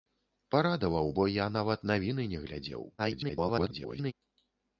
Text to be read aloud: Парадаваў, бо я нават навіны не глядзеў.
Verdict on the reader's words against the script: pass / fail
fail